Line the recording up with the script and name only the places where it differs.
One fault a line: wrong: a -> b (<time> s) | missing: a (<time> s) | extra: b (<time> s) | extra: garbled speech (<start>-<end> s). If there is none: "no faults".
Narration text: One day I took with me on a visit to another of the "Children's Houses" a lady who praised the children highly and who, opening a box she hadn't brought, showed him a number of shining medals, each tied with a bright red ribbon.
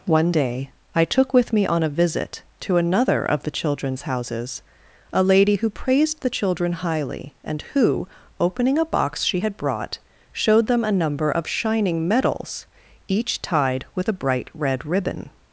wrong: hadn't -> had (9.4 s)
wrong: him -> them (10.7 s)